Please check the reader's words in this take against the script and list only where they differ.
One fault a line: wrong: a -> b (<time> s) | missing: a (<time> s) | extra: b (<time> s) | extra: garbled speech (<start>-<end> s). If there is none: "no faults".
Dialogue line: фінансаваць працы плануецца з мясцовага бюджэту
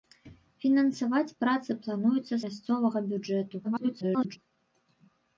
missing: з (2.4 s)
extra: garbled speech (3.6-4.4 s)